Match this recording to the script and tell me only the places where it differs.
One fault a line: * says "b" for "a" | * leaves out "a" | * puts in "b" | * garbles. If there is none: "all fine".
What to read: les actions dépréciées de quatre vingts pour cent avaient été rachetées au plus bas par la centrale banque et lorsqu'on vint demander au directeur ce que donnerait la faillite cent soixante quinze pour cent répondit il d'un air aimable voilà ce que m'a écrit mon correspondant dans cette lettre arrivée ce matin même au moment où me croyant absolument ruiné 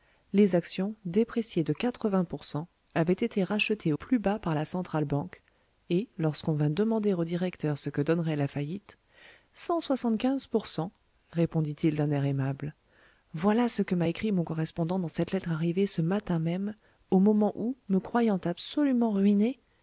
* leaves out "au"